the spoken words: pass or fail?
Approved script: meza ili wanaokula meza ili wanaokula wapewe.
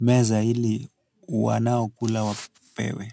fail